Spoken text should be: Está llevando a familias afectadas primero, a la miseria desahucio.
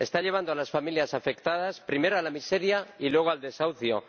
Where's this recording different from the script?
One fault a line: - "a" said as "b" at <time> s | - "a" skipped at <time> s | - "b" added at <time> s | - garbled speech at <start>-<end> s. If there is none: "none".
- "las" added at 0.6 s
- "y luego al" added at 3.0 s